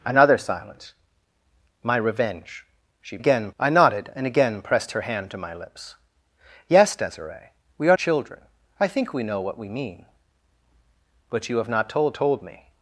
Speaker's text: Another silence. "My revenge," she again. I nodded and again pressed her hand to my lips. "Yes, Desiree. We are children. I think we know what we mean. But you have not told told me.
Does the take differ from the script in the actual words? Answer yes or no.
no